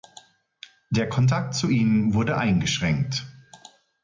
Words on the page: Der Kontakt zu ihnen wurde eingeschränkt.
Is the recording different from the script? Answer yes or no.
no